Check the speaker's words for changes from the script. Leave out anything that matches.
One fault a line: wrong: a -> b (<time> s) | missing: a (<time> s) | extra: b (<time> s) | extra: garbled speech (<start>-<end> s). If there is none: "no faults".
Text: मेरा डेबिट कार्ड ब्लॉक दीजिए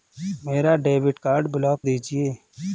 no faults